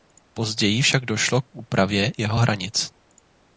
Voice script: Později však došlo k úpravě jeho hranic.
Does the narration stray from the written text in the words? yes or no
no